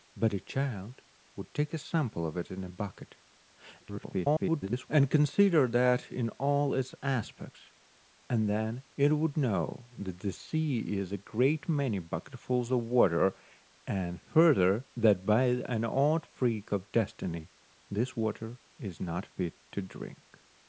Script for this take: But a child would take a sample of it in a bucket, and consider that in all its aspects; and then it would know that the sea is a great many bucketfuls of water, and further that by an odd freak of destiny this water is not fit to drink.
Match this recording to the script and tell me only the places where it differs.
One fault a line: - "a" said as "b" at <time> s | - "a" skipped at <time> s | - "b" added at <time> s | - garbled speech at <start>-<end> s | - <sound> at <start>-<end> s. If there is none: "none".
- garbled speech at 3.8-4.9 s